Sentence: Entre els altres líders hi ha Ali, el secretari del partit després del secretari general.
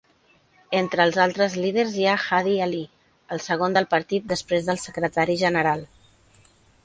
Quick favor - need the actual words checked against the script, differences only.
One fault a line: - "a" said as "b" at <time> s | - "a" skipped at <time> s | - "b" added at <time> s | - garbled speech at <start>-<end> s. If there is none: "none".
- "Hadi" added at 2.4 s
- "secretari" said as "segon" at 3.5 s